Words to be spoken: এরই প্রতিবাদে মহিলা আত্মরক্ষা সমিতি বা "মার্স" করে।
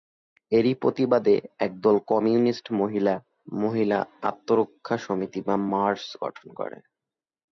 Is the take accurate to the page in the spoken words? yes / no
no